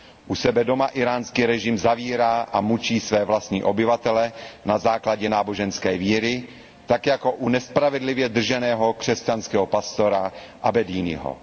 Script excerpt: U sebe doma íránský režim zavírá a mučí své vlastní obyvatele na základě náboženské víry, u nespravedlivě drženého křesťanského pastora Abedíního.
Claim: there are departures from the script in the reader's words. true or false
true